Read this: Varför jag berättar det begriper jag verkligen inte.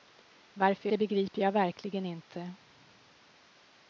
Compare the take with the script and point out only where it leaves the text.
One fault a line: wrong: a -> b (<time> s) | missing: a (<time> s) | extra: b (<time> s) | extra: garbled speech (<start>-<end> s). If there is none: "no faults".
missing: jag berättar (0.9 s)